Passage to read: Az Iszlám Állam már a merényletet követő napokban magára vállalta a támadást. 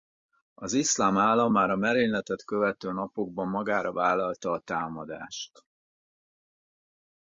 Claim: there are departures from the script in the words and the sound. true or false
false